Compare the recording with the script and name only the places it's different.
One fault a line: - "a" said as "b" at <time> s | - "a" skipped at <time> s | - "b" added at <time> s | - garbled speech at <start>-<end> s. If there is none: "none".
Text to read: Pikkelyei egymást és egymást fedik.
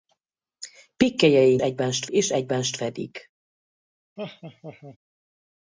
none